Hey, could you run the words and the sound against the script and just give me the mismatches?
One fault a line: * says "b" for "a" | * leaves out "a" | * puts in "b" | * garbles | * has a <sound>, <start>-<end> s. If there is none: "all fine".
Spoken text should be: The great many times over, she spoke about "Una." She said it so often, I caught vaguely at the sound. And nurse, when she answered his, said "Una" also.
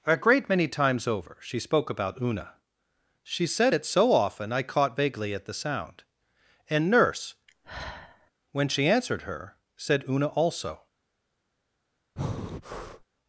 * says "A" for "The"
* has a sigh, 7.5-8.3 s
* says "her" for "his"
* has a breath, 12.2-13.0 s